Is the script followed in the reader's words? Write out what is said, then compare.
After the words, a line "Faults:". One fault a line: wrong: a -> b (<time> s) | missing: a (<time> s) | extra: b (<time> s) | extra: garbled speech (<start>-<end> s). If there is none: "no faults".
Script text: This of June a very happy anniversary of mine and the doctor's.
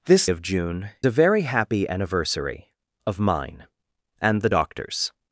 This of June a very happy anniversary of mine and the doctor's.
Faults:
no faults